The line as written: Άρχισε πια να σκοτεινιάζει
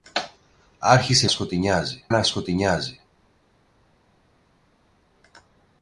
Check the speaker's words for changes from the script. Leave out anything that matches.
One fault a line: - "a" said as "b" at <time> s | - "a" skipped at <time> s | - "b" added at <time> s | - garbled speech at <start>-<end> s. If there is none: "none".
- "πια" said as "σκοτεινιάζει" at 1.3 s